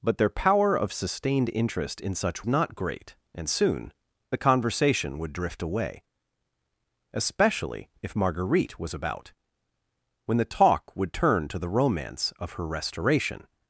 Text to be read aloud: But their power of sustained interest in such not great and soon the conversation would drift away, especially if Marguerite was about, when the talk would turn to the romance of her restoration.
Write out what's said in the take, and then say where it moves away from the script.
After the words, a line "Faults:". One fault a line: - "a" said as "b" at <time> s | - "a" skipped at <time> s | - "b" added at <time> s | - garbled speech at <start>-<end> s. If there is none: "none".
But their power of sustained interest in such not great and soon the conversation would drift away, especially if Marguerite was about, when the talk would turn to the romance of her restoration.
Faults:
none